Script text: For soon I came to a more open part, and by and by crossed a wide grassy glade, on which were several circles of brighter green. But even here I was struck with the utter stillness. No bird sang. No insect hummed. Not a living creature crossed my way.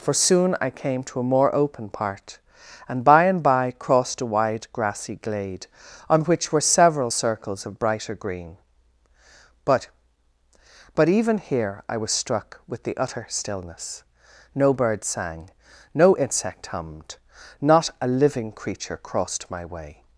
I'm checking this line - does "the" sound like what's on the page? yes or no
yes